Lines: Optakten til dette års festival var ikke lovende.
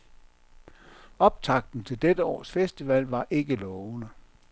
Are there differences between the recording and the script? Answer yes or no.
no